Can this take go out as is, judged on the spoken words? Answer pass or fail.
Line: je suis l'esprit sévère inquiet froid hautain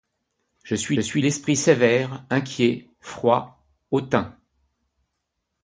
fail